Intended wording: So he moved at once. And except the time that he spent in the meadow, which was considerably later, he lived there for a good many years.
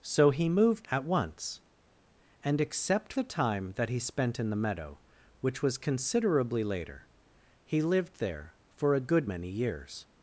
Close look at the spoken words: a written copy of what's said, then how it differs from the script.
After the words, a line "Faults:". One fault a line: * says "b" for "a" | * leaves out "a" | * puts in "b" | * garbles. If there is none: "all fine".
So he moved at once. And except the time that he spent in the meadow, which was considerably later, he lived there for a good many years.
Faults:
all fine